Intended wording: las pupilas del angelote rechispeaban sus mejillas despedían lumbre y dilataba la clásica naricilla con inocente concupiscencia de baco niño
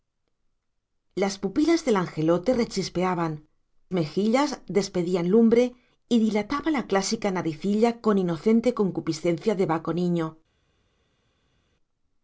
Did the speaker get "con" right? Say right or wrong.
right